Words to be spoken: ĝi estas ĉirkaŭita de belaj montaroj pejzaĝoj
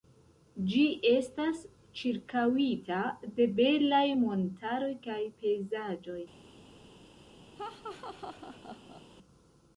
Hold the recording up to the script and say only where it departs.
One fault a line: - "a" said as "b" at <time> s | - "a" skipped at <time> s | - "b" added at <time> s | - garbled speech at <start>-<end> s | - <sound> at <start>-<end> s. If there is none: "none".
- "kaj" added at 5.1 s
- laugh at 7.6-9.0 s